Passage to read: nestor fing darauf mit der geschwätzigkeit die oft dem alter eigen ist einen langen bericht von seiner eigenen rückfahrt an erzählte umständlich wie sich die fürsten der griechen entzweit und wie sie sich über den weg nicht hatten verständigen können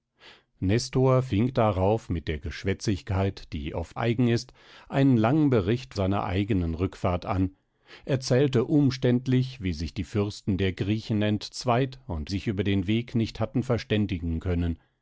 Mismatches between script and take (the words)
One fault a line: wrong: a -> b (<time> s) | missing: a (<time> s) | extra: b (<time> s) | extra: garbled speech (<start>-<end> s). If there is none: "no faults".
missing: dem alter (4.0 s)
missing: von (5.9 s)
missing: wie sie (12.3 s)